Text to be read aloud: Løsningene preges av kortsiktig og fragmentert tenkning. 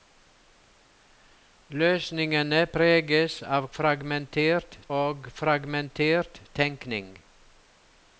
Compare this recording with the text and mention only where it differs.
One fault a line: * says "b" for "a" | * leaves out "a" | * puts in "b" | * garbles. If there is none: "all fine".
* says "fragmentert" for "kortsiktig"